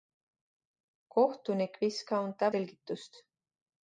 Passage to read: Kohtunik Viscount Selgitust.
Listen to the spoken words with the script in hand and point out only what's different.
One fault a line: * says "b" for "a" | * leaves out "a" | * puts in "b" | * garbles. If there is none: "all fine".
all fine